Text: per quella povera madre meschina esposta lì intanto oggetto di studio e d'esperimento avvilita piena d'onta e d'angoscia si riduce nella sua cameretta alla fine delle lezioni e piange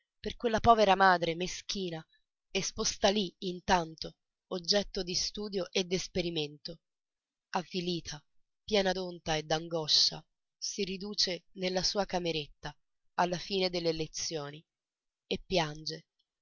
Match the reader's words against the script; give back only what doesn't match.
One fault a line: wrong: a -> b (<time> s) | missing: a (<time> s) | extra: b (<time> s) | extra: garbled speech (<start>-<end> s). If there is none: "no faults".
no faults